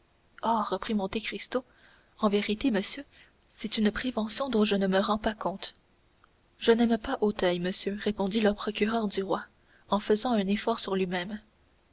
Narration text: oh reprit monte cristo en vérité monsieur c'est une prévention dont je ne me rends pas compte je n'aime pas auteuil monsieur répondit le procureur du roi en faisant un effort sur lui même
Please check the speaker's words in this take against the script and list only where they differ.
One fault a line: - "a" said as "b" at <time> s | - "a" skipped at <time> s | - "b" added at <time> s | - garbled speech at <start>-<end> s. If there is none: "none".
none